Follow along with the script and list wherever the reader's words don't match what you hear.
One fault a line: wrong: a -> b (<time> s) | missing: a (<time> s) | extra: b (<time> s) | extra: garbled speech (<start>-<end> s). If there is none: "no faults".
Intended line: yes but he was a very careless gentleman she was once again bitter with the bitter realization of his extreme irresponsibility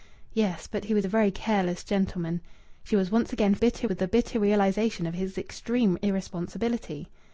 no faults